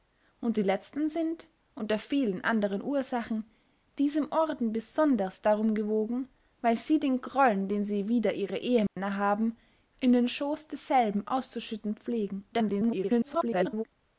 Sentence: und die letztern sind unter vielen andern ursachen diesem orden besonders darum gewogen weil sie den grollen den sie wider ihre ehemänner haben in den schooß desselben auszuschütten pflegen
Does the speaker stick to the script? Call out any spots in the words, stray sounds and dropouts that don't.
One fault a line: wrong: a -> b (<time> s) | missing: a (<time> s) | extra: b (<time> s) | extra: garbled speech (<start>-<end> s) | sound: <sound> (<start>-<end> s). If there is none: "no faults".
sound: dropout (8.9-9.0 s)
extra: garbled speech (12.5-13.8 s)